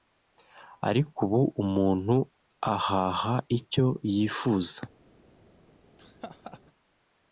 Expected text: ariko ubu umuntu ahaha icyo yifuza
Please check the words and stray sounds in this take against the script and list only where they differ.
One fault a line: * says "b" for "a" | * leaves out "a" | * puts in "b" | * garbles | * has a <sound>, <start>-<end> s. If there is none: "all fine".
* has a laugh, 6.0-6.6 s